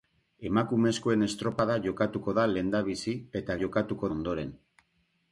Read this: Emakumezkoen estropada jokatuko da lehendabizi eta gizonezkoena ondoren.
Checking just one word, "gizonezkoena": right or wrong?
wrong